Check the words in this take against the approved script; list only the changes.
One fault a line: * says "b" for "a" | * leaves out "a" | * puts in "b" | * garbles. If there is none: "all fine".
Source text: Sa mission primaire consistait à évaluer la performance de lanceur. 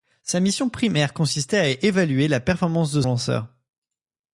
all fine